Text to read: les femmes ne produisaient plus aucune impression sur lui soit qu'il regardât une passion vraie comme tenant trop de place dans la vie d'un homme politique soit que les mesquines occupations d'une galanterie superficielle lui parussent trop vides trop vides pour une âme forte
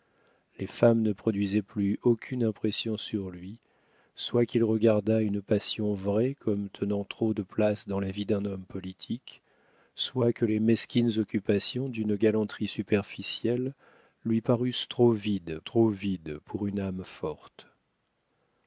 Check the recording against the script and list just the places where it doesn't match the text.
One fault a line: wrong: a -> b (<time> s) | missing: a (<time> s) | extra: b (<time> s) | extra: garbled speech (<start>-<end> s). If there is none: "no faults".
no faults